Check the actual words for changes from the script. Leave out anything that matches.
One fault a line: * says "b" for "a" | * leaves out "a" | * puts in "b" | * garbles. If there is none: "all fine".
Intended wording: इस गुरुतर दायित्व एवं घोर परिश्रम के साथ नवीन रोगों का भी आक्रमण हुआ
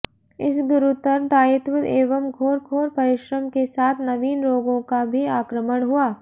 * puts in "घोर"